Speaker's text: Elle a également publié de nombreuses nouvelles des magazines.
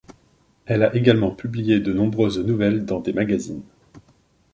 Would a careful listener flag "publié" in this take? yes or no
no